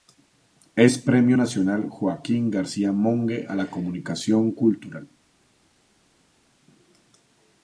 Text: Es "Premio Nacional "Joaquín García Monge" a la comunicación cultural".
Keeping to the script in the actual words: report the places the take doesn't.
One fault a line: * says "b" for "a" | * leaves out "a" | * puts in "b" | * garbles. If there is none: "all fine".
all fine